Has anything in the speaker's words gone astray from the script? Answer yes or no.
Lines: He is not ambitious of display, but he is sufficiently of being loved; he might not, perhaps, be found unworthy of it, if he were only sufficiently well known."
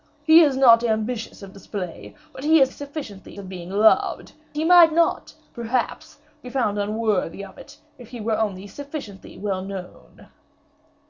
no